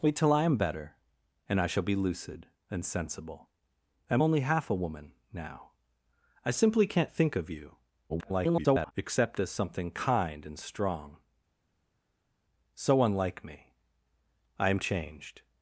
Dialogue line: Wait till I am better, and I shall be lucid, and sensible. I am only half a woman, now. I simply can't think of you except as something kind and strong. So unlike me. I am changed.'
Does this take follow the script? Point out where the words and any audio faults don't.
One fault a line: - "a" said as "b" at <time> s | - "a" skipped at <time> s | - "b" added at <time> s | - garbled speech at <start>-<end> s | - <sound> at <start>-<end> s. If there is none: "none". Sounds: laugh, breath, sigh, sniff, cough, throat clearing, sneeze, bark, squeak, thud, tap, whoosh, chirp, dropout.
- garbled speech at 8.1-8.9 s